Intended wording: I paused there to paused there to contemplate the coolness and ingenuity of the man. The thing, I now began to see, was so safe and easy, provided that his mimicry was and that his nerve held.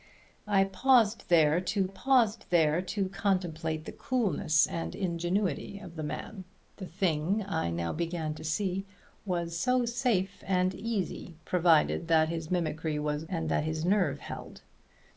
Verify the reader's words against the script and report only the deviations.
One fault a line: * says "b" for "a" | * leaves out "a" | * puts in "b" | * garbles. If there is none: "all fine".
all fine